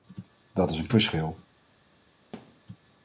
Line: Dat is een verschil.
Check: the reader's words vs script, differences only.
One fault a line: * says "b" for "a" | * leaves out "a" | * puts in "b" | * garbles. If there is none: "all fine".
all fine